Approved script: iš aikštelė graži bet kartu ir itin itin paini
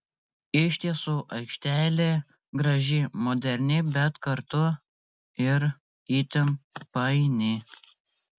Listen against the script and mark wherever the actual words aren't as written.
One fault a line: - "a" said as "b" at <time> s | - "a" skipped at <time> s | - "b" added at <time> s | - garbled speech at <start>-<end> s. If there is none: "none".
- "tiesų" added at 0.8 s
- "moderni" added at 3.3 s
- "itin" skipped at 6.6 s